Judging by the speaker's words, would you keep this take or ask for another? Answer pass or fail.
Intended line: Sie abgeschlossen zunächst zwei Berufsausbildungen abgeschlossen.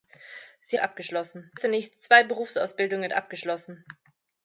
pass